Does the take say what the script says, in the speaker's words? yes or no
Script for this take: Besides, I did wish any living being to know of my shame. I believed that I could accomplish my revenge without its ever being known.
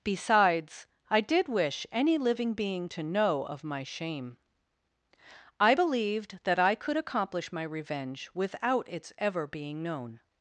yes